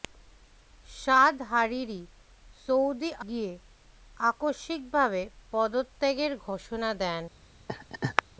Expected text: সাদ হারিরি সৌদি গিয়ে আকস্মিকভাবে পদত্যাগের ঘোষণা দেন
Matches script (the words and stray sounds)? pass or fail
fail